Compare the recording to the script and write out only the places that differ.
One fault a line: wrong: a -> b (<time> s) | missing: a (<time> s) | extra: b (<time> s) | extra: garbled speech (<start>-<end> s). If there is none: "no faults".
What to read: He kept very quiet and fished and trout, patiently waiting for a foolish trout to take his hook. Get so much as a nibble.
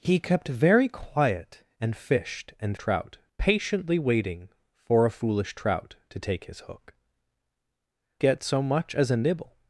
no faults